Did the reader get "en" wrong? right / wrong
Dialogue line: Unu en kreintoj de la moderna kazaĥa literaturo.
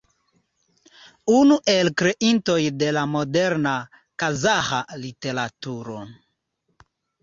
wrong